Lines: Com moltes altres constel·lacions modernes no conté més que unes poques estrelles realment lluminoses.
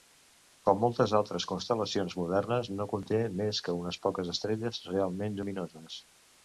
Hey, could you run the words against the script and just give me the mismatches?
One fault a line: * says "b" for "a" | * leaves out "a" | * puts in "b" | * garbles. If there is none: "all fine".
all fine